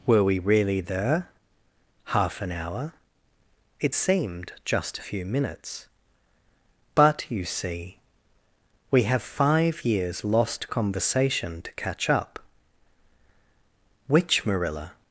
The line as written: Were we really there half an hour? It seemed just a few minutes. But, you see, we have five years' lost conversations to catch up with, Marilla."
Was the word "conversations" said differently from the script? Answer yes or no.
yes